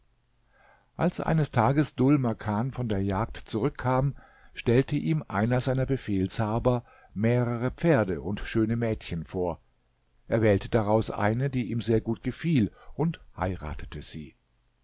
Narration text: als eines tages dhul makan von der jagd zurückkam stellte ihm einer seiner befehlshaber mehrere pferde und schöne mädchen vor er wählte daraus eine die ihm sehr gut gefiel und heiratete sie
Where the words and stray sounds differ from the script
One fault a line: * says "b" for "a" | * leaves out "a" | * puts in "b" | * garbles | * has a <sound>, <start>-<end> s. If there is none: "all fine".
all fine